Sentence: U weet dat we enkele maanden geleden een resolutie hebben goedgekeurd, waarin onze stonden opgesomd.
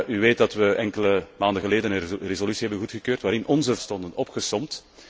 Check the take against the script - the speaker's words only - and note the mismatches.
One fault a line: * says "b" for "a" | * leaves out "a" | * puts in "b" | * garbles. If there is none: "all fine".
all fine